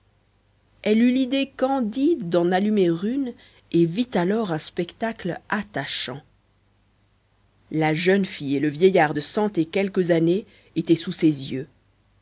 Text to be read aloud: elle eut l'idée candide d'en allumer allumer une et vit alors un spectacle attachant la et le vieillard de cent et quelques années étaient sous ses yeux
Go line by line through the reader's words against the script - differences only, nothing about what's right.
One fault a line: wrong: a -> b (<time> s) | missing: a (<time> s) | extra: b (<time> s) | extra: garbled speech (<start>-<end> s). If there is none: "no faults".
missing: allumer (2.8 s)
extra: jeune fille (7.9 s)